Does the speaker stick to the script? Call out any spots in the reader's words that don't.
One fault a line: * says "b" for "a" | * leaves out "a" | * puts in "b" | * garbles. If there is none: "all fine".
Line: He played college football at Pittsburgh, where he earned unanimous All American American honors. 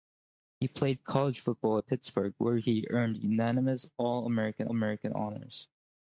all fine